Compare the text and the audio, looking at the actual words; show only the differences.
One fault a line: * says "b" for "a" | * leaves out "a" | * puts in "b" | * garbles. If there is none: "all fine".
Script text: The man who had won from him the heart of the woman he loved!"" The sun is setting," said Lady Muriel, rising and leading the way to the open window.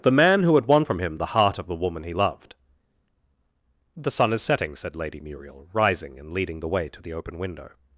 all fine